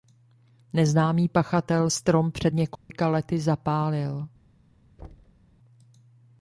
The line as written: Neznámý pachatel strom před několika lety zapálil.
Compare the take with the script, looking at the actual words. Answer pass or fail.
pass